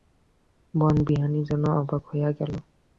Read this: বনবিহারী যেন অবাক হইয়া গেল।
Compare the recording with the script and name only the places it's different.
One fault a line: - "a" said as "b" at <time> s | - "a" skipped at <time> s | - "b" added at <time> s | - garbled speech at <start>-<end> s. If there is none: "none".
none